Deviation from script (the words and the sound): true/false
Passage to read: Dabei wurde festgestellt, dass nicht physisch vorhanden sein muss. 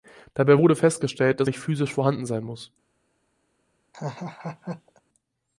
true